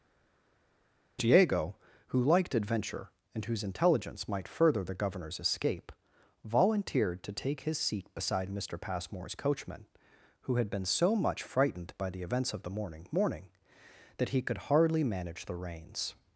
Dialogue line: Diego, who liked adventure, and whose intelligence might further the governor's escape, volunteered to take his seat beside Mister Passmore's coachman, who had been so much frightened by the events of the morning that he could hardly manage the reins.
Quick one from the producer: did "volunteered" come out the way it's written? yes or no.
yes